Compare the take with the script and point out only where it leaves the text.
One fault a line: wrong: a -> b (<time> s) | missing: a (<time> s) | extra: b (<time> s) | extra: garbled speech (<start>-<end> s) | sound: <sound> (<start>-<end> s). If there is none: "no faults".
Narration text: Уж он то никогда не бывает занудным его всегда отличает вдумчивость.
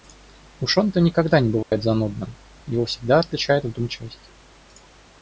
sound: dropout (1.6-1.7 s)